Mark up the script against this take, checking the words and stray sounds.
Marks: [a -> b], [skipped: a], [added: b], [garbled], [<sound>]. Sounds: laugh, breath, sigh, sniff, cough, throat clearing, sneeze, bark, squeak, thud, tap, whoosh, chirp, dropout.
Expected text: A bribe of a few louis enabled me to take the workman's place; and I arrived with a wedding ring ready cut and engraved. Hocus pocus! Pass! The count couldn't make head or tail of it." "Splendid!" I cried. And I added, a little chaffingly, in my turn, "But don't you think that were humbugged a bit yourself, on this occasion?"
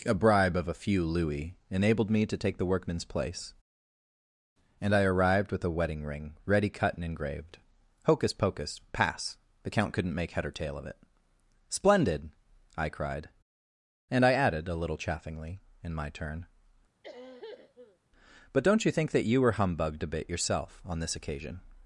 A bribe of a few louis enabled me to take the workman's place; and I arrived with a wedding ring ready cut and engraved. Hocus pocus! Pass! The count couldn't make head or tail of it." "Splendid!" I cried. And I added, a little chaffingly, in my turn, [cough] "But don't you think that [added: you] were humbugged a bit yourself, on this occasion?"